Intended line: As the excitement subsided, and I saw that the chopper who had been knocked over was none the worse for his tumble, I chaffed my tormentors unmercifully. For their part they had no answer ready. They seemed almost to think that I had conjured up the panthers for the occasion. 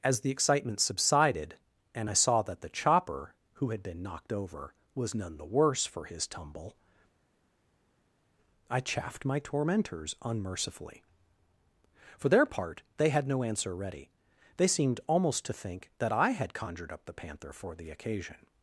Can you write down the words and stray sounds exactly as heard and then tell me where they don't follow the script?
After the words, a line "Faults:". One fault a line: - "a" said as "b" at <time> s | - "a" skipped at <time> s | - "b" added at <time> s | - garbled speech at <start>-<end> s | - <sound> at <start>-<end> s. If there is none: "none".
As the excitement subsided, and I saw that the chopper who had been knocked over was none the worse for his tumble, I chaffed my tormentors unmercifully. For their part they had no answer ready. They seemed almost to think that I had conjured up the panther for the occasion.
Faults:
- "panthers" said as "panther" at 17.1 s